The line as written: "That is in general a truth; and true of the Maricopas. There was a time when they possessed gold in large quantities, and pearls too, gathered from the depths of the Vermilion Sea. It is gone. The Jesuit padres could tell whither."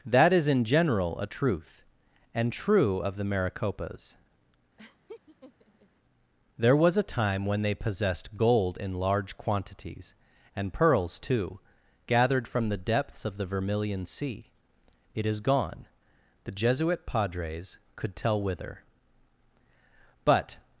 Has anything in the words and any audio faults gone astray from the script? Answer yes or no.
yes